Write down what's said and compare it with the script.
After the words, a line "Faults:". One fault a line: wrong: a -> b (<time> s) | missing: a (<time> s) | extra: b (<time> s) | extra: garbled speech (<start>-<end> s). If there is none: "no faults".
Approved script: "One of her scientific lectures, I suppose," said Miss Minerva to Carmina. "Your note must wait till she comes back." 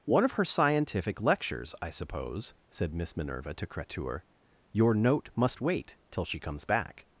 "One of her scientific lectures, I suppose," said Miss Minerva to Cretur. "Your note must wait till she comes back."
Faults:
wrong: Carmina -> Cretur (3.7 s)